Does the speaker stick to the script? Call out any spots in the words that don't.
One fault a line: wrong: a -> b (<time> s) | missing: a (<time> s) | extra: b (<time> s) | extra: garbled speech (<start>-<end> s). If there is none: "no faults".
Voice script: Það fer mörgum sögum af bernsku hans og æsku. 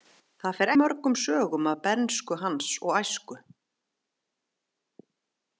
no faults